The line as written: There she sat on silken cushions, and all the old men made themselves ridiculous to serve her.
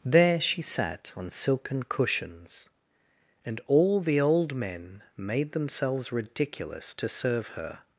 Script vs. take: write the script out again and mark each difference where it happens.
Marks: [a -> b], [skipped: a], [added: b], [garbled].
There she sat on silken cushions, and all the old men made themselves ridiculous to serve her.